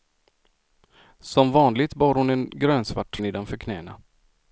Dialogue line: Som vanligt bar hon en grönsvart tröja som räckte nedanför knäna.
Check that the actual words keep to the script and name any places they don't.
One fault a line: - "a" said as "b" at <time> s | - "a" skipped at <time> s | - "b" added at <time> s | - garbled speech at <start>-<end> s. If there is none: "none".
- "tröja som räckte" skipped at 3.2 s